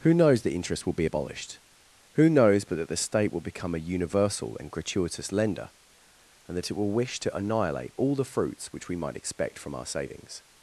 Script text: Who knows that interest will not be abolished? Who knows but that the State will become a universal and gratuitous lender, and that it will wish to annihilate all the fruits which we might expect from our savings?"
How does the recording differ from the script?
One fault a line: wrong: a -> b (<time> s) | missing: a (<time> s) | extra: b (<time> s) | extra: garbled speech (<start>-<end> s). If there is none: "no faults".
missing: not (0.9 s)